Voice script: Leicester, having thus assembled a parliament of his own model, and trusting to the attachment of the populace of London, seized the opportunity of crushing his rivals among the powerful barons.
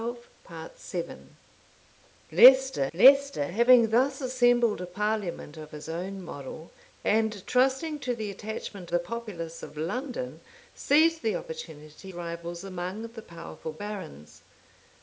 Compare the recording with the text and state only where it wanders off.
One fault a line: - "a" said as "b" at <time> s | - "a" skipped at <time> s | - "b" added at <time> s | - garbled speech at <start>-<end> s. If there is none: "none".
- "leicester" added at 2.9 s
- "of" skipped at 8.9 s
- "of crushing his" skipped at 12.1 s